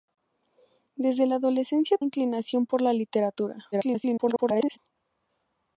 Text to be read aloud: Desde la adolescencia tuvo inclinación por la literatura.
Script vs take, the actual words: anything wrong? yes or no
yes